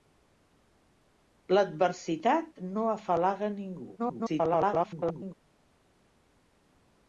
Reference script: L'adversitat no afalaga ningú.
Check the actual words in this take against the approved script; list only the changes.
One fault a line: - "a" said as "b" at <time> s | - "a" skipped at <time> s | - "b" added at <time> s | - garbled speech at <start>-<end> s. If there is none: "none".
- garbled speech at 4.0-5.3 s